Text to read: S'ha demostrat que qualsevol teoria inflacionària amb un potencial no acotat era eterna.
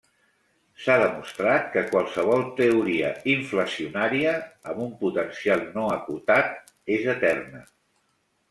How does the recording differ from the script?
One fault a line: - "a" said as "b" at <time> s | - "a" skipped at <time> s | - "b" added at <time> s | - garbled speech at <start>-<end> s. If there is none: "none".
- "era" said as "és" at 7.0 s